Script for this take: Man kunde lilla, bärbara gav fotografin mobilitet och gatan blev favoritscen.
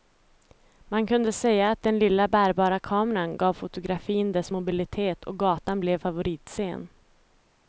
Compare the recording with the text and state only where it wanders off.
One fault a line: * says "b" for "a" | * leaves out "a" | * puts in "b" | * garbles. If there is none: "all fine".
* puts in "säga att den"
* puts in "kameran"
* puts in "dess"